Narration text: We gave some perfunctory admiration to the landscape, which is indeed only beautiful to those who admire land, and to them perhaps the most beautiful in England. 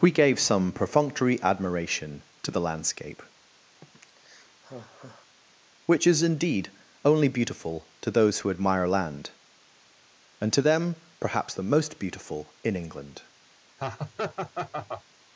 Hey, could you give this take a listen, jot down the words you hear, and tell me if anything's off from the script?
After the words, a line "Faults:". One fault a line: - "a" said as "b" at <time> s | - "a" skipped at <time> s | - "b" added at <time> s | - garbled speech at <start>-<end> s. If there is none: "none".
We gave some perfunctory admiration to the landscape, which is indeed only beautiful to those who admire land, and to them perhaps the most beautiful in England.
Faults:
none